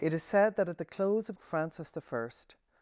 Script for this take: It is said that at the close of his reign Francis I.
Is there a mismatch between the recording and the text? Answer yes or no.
yes